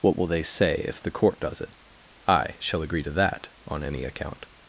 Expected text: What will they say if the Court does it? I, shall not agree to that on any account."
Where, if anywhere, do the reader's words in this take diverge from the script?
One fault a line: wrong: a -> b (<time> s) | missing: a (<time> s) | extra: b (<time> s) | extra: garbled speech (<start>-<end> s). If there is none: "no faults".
missing: not (2.8 s)